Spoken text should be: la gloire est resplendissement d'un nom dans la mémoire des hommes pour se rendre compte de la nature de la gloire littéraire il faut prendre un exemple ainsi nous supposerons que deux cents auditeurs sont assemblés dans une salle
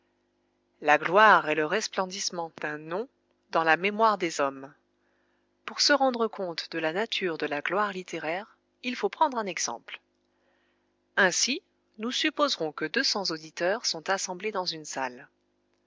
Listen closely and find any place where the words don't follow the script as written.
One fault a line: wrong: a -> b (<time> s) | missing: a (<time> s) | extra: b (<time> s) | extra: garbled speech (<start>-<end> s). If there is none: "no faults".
extra: le (1.5 s)